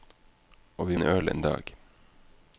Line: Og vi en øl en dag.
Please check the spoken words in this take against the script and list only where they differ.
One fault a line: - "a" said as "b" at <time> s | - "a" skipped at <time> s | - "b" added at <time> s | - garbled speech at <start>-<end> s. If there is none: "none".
none